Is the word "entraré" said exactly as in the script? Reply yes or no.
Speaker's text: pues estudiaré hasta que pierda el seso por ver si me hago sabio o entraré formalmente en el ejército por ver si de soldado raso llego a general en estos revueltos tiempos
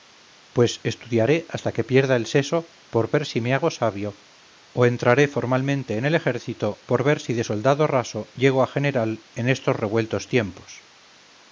yes